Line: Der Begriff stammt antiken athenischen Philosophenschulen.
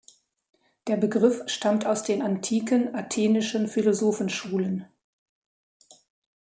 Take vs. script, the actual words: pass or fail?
fail